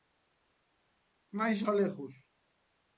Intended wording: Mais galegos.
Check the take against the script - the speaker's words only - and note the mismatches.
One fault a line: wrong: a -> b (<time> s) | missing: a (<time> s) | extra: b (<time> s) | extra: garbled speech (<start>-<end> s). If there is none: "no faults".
no faults